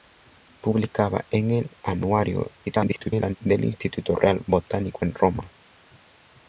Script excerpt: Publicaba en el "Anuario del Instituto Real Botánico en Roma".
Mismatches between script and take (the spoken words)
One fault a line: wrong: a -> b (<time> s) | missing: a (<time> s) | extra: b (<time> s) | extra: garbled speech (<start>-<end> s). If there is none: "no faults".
extra: garbled speech (2.6-3.4 s)